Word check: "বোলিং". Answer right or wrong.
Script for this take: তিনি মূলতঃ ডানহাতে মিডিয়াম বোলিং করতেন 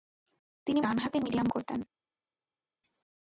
wrong